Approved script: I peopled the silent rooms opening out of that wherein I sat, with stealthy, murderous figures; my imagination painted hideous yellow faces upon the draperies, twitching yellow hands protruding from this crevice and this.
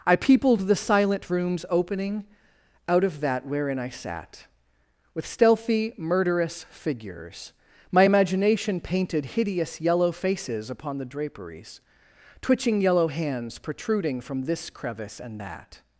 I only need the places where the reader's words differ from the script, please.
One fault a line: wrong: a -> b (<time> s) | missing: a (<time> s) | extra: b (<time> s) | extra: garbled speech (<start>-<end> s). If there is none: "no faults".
wrong: this -> that (15.4 s)